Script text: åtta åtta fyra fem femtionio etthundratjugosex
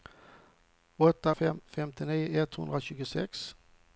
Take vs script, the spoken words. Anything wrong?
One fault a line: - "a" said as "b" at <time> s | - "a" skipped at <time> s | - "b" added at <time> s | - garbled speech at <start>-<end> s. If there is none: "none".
- "åtta fyra" skipped at 1.4 s